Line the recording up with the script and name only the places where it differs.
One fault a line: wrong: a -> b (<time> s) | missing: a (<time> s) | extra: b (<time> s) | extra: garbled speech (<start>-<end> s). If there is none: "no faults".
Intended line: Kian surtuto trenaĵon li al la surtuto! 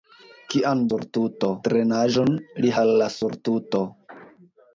no faults